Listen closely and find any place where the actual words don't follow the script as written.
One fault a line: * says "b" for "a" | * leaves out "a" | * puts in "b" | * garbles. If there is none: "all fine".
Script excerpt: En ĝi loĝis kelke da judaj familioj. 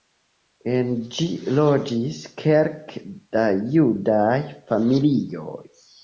all fine